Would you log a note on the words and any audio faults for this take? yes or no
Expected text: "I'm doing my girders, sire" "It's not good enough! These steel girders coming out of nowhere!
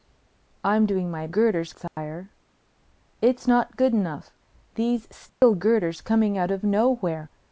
yes